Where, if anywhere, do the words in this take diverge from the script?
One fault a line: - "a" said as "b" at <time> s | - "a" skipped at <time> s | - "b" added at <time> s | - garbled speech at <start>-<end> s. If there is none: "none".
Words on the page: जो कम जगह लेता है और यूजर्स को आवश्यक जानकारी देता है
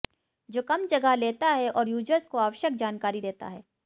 none